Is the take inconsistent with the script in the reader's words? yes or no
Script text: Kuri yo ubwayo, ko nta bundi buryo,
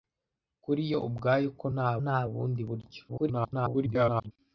yes